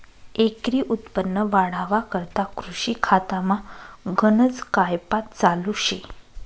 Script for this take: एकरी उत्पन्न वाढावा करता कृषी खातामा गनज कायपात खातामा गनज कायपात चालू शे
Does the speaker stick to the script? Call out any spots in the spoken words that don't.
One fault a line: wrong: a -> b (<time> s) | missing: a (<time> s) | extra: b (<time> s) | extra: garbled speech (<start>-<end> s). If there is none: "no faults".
missing: खातामा गनज कायपात (5.3 s)